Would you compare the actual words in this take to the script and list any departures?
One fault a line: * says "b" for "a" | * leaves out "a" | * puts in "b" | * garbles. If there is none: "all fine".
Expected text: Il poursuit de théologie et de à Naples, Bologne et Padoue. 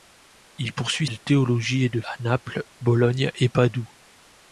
all fine